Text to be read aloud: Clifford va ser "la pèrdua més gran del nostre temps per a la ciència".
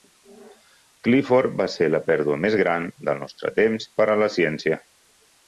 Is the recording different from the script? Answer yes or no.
no